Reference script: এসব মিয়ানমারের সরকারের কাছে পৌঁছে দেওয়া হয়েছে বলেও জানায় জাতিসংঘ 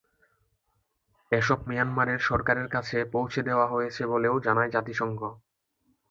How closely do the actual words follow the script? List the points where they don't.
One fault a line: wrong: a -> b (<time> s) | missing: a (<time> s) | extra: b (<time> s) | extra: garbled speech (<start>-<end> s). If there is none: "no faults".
no faults